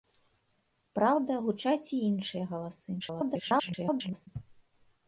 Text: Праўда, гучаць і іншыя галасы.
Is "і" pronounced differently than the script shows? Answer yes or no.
no